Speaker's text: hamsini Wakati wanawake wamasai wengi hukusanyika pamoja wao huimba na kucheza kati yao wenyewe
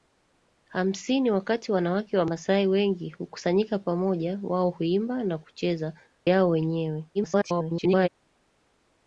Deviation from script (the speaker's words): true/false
true